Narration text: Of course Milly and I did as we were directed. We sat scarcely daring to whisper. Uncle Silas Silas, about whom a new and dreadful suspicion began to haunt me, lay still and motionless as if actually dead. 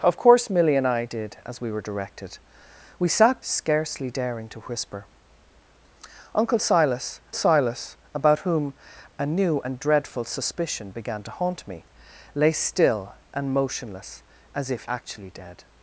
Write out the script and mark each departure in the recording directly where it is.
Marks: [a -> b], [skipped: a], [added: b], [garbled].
Of course Milly and I did as we were directed. We sat scarcely daring to whisper. Uncle Silas Silas, about whom a new and dreadful suspicion began to haunt me, lay still and motionless as if actually dead.